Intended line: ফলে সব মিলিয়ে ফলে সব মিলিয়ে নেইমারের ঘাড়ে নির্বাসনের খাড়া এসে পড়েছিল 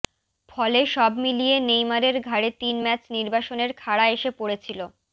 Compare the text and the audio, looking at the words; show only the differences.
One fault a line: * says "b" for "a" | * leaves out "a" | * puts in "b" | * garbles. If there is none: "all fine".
* says "নেইমারের ঘাড়ে তিন ম্যাচ" for "ফলে সব মিলিয়ে নেইমারের ঘাড়ে"